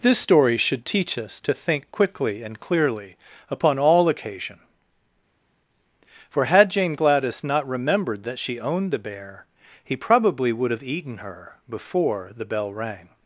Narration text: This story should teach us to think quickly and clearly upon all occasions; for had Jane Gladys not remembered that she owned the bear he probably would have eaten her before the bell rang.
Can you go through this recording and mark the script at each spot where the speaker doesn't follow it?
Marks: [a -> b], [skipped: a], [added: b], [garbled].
This story should teach us to think quickly and clearly upon all [occasions; -> occasion] for had Jane Gladys not remembered that she owned the bear he probably would have eaten her before the bell rang.